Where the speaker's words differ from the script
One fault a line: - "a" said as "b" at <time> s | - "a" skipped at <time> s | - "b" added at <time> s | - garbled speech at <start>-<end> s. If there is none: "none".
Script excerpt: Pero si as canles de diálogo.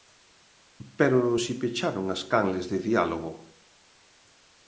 - "pecharon" added at 1.6 s